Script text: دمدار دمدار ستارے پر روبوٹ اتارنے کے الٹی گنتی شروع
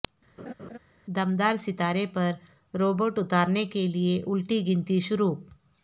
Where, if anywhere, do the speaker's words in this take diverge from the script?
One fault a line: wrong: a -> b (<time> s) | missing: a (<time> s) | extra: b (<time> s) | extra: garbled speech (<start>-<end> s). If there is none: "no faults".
missing: دمدار (1.6 s)
extra: لیے (3.9 s)